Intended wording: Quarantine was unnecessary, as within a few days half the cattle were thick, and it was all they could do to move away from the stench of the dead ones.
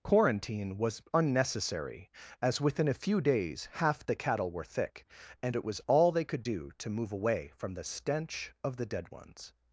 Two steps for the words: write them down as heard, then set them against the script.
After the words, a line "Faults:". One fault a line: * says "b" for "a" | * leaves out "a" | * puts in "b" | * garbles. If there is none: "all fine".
Quarantine was unnecessary, as within a few days half the cattle were thick, and it was all they could do to move away from the stench of the dead ones.
Faults:
all fine